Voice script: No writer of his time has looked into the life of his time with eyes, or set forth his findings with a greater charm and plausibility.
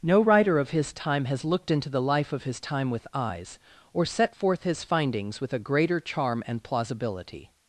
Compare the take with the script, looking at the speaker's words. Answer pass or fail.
pass